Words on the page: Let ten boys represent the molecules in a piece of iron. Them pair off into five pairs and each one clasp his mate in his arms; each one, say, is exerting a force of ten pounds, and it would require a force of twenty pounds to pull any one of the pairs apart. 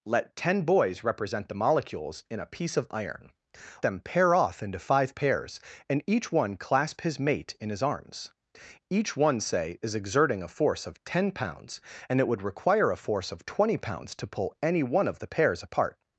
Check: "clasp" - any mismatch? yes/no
no